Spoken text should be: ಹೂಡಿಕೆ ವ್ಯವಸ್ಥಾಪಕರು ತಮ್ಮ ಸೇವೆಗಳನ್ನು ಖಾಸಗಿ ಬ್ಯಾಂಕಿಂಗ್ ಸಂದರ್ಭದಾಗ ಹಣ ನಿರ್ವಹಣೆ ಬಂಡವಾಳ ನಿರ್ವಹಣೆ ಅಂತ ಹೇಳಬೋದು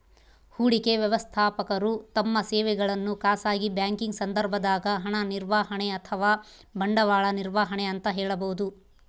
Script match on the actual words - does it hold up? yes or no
no